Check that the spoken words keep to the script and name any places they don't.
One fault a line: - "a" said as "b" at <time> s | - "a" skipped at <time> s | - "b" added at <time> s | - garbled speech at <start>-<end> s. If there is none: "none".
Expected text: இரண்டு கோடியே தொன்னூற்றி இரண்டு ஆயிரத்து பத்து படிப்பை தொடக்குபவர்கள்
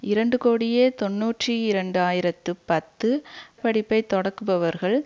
none